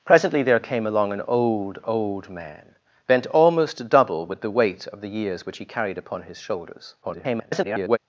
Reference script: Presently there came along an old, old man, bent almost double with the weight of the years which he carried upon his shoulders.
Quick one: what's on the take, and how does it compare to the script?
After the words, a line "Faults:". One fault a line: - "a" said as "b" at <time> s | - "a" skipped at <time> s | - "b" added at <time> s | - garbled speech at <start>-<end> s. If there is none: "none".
Presently there came along an old, old man, bent almost double with the weight of the years which he carried upon his shoulders. [garbled]
Faults:
- garbled speech at 7.0-8.0 s